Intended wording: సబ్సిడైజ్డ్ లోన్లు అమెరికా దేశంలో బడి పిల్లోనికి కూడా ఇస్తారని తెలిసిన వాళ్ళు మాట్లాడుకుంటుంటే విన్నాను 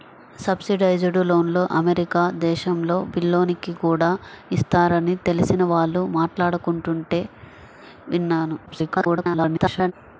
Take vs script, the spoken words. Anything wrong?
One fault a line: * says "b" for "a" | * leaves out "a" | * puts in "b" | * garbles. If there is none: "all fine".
* leaves out "బడి"
* garbles